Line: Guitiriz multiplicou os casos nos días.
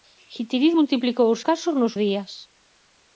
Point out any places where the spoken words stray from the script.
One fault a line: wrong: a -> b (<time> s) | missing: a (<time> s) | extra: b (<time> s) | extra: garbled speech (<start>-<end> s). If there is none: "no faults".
no faults